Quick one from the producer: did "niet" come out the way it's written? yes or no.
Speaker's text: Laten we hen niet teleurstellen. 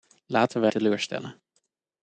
no